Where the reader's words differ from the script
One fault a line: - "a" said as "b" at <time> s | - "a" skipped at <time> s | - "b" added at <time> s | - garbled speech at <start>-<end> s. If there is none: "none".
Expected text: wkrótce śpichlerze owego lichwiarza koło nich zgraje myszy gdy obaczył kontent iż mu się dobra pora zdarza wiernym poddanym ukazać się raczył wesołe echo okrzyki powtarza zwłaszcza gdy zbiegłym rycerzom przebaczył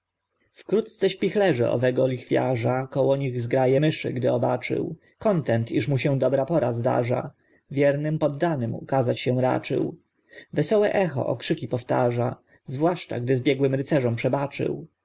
none